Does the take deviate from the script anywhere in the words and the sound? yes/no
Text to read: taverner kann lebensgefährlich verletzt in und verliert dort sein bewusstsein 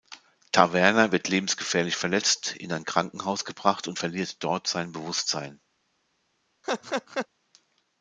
yes